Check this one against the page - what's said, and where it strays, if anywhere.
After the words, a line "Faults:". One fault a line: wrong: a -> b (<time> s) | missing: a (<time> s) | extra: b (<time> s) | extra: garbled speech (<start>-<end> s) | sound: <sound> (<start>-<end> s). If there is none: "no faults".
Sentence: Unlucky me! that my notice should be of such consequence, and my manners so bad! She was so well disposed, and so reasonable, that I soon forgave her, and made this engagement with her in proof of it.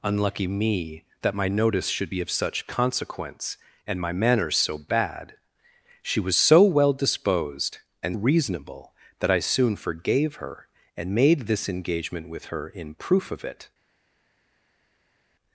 Unlucky me! that my notice should be of such consequence, and my manners so bad! She was so well disposed, and reasonable, that I soon forgave her, and made this engagement with her in proof of it.
Faults:
missing: so (8.2 s)